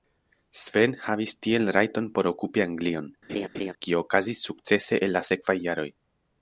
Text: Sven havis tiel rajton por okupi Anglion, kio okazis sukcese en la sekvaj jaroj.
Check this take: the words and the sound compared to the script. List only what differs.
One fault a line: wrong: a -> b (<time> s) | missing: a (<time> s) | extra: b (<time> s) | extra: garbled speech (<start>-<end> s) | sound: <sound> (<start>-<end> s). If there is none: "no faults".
sound: laugh (3.3-3.7 s)